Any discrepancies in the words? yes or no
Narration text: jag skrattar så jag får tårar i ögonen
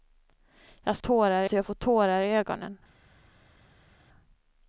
yes